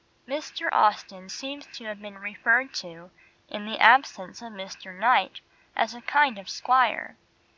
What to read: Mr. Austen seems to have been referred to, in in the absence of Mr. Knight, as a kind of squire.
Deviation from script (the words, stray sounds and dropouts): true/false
true